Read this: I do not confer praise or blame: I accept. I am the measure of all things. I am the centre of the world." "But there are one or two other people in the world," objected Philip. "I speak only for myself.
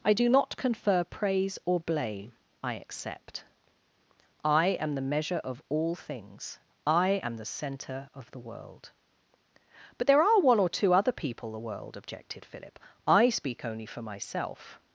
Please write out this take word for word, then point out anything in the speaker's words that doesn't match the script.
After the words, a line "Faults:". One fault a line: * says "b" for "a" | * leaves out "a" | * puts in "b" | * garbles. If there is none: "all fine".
I do not confer praise or blame: I accept. I am the measure of all things. I am the centre of the world." "But there are one or two other people the world," objected Philip. "I speak only for myself.
Faults:
* leaves out "in"